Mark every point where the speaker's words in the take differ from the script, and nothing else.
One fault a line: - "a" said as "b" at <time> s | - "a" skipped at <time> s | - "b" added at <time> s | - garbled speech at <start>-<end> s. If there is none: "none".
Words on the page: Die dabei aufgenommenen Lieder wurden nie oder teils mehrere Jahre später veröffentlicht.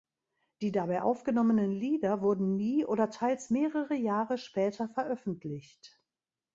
none